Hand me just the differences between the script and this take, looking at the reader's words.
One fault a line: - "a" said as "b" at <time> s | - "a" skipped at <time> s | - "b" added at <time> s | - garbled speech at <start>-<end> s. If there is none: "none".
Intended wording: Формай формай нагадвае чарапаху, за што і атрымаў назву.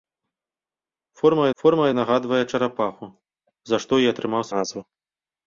none